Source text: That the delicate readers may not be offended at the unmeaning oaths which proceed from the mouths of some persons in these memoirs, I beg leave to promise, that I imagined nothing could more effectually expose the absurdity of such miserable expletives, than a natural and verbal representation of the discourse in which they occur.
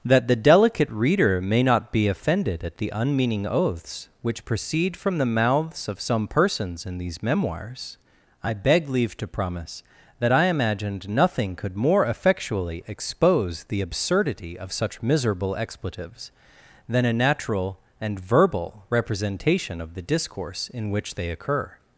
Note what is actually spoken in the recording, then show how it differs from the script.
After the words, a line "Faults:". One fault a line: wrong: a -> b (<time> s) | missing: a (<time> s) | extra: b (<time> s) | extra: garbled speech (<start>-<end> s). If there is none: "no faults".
That the delicate reader may not be offended at the unmeaning oaths which proceed from the mouths of some persons in these memoirs, I beg leave to promise, that I imagined nothing could more effectually expose the absurdity of such miserable expletives, than a natural and verbal representation of the discourse in which they occur.
Faults:
wrong: readers -> reader (0.9 s)